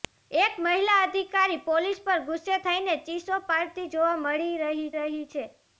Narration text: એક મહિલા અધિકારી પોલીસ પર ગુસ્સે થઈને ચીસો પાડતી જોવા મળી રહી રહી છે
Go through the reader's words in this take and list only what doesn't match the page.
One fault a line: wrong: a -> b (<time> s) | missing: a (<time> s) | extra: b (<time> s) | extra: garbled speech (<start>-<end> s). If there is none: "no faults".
no faults